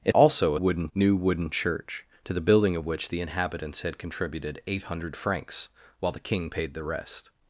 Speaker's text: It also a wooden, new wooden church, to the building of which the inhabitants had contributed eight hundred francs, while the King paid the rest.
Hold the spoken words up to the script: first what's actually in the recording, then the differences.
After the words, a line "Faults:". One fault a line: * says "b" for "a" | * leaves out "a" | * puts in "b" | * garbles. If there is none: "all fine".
It also a wooden, new wooden church, to the building of which the inhabitants had contributed eight hundred francs, while the King paid the rest.
Faults:
all fine